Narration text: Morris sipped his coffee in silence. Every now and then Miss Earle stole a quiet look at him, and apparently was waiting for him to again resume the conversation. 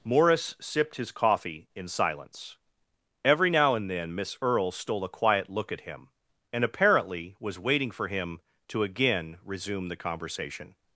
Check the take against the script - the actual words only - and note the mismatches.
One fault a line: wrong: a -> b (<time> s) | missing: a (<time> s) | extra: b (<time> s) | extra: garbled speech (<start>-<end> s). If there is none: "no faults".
no faults